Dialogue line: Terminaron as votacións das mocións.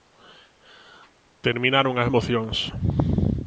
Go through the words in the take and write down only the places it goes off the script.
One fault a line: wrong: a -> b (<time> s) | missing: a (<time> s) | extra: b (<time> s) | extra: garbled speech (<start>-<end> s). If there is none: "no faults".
missing: votacións das (2.1 s)